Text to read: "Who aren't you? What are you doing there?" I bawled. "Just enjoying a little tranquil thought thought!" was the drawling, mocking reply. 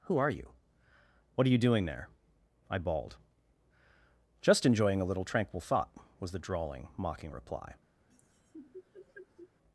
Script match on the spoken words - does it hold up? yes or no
no